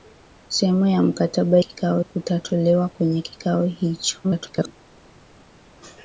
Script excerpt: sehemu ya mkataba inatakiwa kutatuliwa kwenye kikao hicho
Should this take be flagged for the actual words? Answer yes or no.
yes